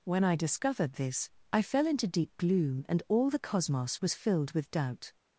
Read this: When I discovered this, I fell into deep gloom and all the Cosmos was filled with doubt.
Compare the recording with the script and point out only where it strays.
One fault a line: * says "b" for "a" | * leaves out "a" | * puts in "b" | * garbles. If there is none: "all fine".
all fine